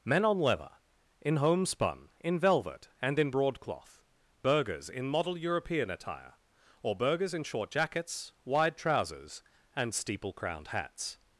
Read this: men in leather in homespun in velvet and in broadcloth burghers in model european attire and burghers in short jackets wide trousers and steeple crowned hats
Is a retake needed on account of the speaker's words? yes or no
yes